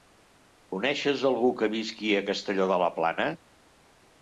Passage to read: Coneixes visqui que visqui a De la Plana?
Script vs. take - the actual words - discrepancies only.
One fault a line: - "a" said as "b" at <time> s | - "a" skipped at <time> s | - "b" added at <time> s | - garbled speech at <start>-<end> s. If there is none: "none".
- "visqui" said as "algú" at 1.3 s
- "Castelló" added at 2.3 s